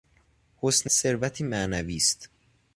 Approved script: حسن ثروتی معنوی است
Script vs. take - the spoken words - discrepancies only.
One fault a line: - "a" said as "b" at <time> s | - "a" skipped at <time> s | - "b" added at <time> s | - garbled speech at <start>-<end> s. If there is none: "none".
none